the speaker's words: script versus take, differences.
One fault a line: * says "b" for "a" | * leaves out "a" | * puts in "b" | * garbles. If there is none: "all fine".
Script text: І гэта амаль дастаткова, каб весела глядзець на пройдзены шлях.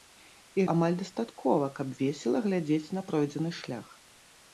* leaves out "гэта"